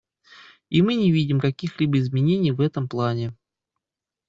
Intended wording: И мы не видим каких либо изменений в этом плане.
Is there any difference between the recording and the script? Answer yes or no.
no